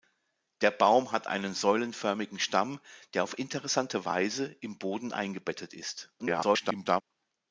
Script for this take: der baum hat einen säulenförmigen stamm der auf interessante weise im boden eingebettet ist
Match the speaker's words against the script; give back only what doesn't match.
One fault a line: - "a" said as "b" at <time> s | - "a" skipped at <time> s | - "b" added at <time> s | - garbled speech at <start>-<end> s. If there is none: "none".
- garbled speech at 6.2-7.0 s